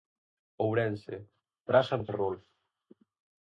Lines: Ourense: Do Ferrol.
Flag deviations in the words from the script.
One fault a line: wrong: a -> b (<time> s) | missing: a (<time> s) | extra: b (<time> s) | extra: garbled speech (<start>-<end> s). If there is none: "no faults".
extra: Praza (1.7 s)